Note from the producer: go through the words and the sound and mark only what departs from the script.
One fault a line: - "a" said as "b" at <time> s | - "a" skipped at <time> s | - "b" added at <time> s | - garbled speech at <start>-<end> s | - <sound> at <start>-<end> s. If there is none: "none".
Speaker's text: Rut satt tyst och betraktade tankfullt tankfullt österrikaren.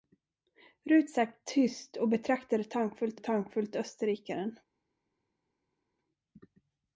none